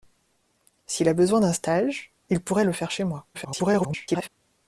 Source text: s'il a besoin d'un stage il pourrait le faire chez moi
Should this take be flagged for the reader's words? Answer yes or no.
yes